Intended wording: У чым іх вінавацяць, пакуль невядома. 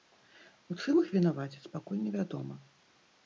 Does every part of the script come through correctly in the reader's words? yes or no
yes